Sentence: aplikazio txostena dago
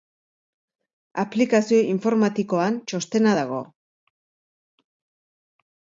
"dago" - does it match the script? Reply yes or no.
yes